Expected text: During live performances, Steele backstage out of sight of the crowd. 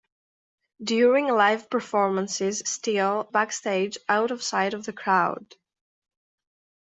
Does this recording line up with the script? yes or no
yes